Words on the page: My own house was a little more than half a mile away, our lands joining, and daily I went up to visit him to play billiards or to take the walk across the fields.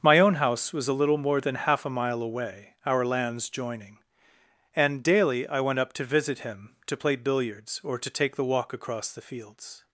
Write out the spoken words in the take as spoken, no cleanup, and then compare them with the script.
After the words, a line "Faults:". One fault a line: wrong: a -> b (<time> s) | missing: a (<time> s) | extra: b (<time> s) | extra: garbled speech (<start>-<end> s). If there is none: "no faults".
My own house was a little more than half a mile away, our lands joining, and daily I went up to visit him to play billiards or to take the walk across the fields.
Faults:
no faults